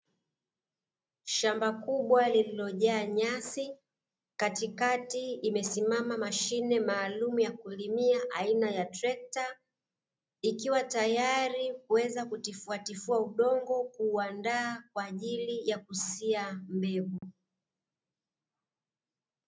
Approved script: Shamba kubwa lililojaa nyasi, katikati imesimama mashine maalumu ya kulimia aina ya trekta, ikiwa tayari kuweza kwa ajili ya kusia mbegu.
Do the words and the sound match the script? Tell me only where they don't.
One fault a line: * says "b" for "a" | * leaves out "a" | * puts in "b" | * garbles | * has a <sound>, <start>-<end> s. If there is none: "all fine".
* puts in "kutifuatifua udongo kuuandaa"
* has a dropout, 17.2-17.2 s